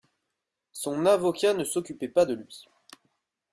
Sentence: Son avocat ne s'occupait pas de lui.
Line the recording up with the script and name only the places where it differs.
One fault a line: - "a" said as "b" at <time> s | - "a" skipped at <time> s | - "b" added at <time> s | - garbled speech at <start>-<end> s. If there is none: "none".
none